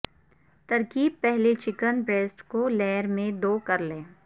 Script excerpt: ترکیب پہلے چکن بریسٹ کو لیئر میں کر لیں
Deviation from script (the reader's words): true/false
true